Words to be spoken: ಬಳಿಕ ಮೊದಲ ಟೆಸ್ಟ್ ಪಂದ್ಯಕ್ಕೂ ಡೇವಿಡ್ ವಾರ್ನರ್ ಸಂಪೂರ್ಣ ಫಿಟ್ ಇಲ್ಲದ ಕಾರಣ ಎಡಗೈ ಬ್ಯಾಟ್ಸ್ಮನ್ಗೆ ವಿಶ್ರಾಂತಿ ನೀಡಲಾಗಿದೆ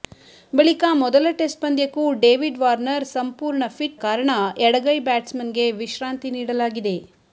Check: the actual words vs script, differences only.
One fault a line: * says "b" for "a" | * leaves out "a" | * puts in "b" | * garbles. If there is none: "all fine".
* leaves out "ಇಲ್ಲದ"